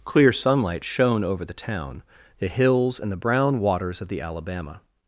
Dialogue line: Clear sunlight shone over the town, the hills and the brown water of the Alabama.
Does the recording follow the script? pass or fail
fail